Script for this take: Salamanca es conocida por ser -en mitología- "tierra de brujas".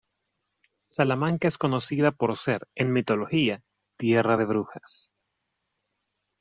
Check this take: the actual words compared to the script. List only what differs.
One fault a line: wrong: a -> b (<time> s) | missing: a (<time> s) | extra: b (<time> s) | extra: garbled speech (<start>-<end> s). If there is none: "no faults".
no faults